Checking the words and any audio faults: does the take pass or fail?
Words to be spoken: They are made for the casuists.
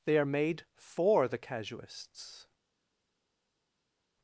pass